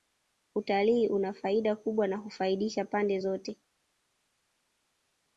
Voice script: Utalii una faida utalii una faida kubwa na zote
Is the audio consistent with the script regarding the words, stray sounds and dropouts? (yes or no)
no